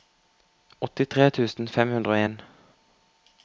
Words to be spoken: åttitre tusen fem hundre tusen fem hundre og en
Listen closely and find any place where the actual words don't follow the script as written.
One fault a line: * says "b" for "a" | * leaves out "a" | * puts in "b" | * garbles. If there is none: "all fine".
* leaves out "tusen fem hundre"